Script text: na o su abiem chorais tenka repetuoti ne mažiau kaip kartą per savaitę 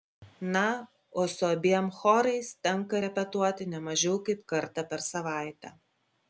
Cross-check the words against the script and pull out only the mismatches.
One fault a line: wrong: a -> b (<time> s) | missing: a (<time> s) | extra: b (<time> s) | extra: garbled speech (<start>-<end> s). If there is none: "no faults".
no faults